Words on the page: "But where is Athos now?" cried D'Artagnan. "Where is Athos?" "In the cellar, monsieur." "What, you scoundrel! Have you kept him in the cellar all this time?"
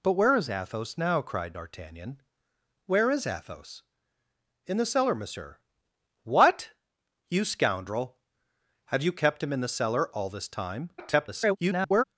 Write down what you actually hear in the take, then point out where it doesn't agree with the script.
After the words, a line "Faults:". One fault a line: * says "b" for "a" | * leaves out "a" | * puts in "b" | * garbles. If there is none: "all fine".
"But where is Athos now?" cried D'Artagnan. "Where is Athos?" "In the cellar, monsieur." "What, you scoundrel! Have you kept him in the cellar all this time?" [garbled]
Faults:
* garbles